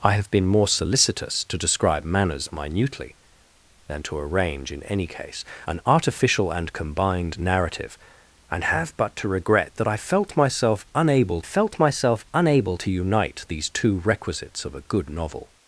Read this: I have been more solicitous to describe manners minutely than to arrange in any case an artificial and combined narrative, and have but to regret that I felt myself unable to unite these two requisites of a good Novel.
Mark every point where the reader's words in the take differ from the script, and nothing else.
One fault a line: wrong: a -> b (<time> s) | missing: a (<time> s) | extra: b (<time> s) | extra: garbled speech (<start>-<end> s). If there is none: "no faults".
extra: felt myself unable (11.4 s)